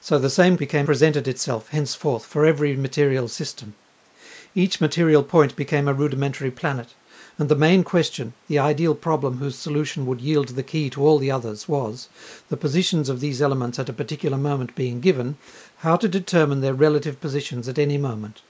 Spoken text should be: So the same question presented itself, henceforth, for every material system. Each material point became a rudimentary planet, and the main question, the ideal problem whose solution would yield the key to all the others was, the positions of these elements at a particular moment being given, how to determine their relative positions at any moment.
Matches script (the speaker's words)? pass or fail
fail